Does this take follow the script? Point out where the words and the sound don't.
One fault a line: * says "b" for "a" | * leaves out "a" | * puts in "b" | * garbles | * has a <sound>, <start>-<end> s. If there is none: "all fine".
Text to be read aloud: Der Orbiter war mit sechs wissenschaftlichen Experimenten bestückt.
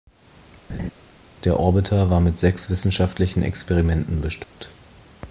* has a laugh, 0.7-0.9 s
* has a dropout, 4.4-4.6 s